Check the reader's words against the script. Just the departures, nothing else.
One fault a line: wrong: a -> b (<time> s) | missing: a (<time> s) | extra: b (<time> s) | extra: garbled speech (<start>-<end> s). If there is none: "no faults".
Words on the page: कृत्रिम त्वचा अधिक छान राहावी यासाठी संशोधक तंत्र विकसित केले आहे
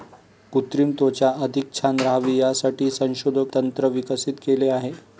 no faults